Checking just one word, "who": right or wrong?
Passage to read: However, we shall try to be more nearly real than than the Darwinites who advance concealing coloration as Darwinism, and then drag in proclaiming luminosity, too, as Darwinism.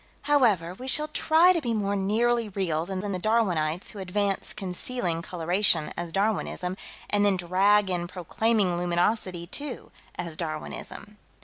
right